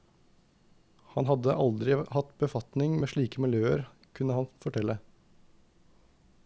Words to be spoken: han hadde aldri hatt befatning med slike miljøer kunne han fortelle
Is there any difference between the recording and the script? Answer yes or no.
no